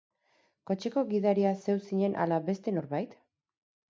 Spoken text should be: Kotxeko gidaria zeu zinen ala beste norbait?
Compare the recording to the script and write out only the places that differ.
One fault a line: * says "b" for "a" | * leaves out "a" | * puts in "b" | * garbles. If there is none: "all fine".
all fine